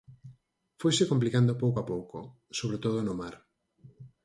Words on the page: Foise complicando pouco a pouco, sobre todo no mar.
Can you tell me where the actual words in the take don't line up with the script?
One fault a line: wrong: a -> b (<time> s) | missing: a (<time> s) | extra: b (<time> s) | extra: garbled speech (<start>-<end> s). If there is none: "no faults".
no faults